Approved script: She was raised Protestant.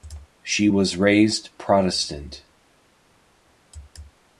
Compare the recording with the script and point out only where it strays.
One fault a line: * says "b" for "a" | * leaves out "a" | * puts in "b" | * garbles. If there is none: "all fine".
all fine